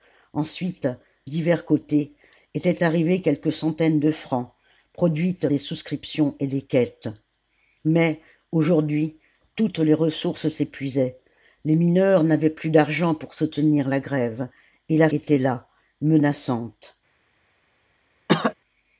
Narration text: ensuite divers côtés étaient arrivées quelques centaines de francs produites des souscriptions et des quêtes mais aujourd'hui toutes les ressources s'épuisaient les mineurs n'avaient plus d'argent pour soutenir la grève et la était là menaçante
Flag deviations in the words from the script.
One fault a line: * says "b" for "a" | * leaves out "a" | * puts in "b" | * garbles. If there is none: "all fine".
all fine